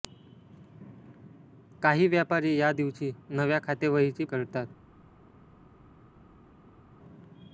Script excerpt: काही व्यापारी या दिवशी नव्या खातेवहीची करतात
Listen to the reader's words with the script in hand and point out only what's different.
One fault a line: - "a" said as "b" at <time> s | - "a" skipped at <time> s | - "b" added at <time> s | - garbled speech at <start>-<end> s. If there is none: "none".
none